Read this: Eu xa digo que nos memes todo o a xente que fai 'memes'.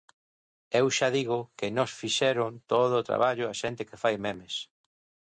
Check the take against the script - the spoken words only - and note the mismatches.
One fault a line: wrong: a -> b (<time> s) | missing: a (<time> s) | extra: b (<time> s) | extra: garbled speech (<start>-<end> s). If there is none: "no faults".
wrong: memes -> fixeron (2.0 s)
extra: traballo (3.1 s)